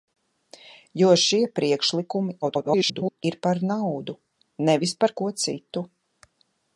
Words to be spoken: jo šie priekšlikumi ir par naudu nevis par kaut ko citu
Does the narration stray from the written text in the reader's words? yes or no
yes